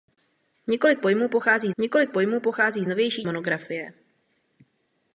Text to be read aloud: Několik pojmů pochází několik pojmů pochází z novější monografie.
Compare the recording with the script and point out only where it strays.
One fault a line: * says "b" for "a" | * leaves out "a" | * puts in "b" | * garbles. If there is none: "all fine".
all fine